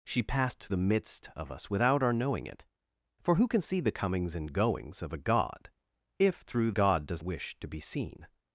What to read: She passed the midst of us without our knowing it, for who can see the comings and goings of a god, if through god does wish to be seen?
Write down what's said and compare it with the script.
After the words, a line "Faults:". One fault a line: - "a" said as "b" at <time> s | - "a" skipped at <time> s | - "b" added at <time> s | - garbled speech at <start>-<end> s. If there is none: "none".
She passed the midst of us without our knowing it, for who can see the comings and goings of a god, if through god does wish to be seen?
Faults:
none